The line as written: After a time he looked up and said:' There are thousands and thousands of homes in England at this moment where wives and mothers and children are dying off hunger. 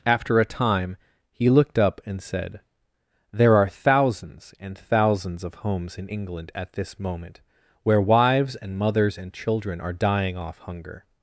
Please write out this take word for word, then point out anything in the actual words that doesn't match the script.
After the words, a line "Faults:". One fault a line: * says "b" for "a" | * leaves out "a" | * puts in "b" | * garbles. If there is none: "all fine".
After a time he looked up and said:' There are thousands and thousands of homes in England at this moment where wives and mothers and children are dying off hunger.
Faults:
all fine